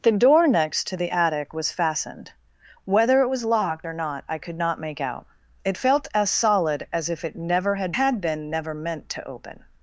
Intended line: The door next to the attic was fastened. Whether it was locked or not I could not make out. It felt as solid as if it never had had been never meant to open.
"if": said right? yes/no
yes